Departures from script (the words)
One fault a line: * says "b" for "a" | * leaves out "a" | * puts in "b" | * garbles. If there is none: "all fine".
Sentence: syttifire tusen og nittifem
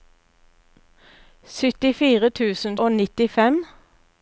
all fine